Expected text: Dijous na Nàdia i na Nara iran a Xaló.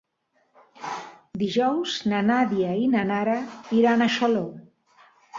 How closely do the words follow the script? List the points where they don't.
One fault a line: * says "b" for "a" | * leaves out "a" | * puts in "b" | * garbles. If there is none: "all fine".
all fine